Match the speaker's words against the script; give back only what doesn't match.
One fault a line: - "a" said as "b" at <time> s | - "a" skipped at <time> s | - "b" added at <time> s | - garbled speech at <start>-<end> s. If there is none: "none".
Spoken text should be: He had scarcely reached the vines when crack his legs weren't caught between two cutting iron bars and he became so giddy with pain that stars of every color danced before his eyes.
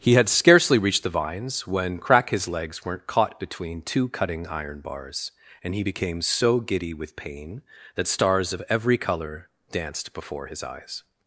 none